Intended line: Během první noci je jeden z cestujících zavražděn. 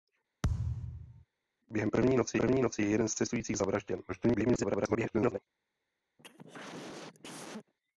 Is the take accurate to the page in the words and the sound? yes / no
no